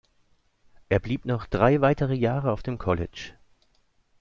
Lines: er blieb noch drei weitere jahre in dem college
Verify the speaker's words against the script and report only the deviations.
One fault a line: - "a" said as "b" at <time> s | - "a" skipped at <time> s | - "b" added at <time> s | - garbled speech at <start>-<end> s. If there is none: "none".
- "in" said as "auf" at 2.5 s